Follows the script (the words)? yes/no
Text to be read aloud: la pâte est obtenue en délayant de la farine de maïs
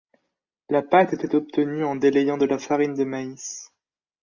no